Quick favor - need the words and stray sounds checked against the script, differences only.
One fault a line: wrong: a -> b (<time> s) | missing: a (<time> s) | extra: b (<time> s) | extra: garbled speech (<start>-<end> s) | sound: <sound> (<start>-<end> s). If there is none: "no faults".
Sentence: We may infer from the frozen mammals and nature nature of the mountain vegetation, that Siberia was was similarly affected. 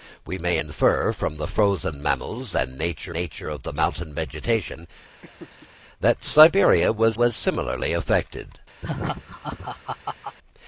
sound: laugh (5.2-5.7 s)
sound: laugh (8.8-10.4 s)